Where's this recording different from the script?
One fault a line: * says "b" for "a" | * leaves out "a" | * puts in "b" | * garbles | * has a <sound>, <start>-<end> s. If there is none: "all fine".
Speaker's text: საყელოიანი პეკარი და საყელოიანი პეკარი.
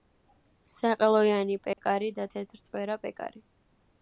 * has a dropout, 1.7-1.8 s
* says "თეთრწვერა" for "საყელოიანი"